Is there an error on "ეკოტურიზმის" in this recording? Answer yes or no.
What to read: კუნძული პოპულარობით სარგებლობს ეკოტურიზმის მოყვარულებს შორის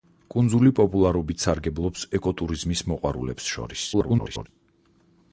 no